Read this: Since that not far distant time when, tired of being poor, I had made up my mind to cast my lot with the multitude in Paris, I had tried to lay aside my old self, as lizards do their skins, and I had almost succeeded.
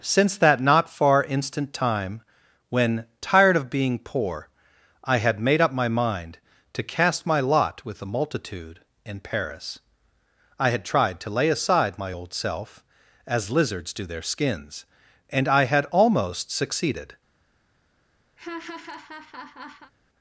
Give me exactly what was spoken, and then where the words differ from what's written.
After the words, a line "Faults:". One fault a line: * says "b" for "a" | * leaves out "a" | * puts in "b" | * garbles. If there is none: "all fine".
Since that not far instant time when, tired of being poor, I had made up my mind to cast my lot with the multitude in Paris, I had tried to lay aside my old self, as lizards do their skins, and I had almost succeeded.
Faults:
* says "instant" for "distant"